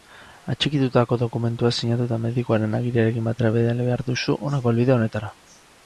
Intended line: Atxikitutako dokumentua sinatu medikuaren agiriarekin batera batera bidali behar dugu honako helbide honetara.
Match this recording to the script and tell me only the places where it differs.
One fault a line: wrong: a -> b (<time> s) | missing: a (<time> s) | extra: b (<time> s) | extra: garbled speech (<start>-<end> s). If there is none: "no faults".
extra: eta (2.1 s)
missing: batera (3.5 s)
wrong: dugu -> duzu (4.1 s)